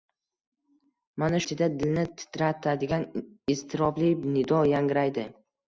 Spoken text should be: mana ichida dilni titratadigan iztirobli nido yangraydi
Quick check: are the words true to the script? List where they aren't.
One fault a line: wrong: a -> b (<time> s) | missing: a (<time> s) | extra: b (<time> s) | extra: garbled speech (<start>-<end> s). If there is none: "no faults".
no faults